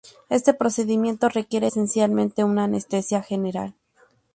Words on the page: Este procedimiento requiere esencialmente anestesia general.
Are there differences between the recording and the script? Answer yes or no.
yes